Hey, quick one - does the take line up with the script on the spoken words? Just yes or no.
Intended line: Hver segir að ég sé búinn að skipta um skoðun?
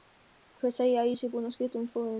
yes